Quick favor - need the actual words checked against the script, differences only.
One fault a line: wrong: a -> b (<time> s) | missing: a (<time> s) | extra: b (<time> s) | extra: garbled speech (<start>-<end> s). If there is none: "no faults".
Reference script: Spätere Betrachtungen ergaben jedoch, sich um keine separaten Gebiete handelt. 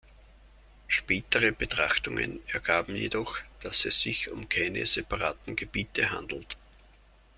extra: dass es (3.6 s)